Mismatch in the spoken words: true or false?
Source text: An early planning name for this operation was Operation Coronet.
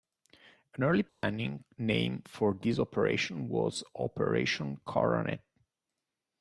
false